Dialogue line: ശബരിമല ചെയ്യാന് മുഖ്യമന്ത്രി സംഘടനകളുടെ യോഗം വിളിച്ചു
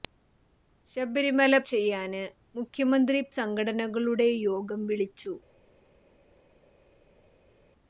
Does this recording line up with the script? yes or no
yes